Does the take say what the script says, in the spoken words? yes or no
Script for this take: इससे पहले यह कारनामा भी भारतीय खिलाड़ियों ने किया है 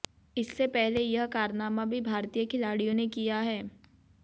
yes